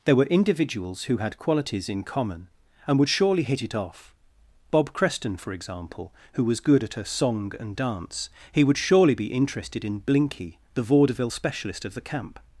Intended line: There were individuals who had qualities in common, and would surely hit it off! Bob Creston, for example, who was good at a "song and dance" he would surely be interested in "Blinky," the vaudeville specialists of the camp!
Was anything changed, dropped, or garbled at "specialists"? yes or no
yes